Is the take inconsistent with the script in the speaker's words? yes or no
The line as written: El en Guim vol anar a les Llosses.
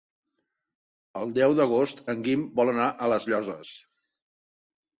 yes